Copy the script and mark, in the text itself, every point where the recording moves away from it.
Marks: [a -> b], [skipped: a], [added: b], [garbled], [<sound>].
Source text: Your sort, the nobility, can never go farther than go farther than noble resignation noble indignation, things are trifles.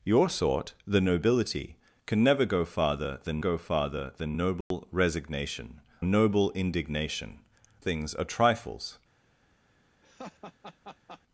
Your sort, the nobility, can never go farther than go farther than noble [dropout] resignation noble indignation, things are trifles. [laugh]